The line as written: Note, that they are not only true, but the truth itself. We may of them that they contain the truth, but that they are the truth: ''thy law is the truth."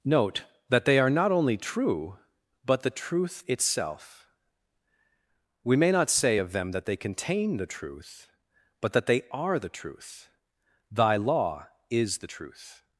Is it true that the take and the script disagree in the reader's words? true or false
true